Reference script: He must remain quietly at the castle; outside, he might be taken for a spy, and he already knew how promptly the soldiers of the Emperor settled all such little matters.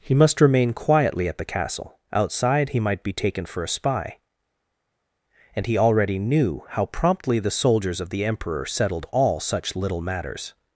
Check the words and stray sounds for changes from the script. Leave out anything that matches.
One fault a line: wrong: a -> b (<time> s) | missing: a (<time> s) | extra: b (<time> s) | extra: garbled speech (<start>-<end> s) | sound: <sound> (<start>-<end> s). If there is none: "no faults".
no faults